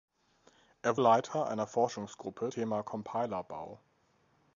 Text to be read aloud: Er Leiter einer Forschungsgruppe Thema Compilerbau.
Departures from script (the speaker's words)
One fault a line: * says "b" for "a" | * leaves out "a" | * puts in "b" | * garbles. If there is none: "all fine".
all fine